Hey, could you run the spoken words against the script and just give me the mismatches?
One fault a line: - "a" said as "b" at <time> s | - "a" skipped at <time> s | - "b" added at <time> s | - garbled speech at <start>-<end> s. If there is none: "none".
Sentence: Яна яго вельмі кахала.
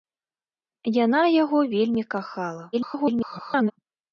- garbled speech at 2.7-3.7 s